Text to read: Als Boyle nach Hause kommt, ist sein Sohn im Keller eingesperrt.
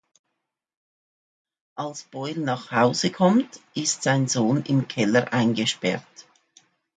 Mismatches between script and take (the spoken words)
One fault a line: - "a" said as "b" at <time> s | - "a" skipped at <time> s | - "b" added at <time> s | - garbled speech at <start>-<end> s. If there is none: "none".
none